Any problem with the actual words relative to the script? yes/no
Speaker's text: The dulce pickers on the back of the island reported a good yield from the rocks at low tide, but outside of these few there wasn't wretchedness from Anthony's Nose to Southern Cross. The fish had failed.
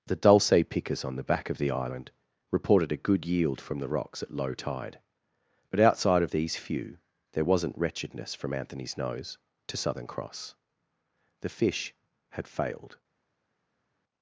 no